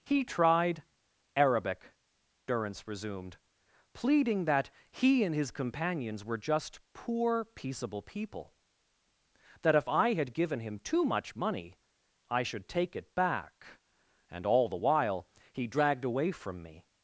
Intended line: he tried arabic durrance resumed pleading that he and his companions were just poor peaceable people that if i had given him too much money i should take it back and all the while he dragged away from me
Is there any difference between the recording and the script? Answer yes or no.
no